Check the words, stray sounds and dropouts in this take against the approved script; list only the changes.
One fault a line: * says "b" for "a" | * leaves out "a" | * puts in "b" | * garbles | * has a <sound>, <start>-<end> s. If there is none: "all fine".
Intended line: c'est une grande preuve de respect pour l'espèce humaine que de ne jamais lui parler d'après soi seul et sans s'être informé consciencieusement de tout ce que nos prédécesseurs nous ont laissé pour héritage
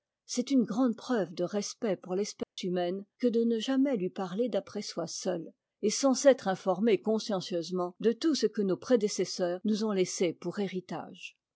* has a dropout, 2.4-2.6 s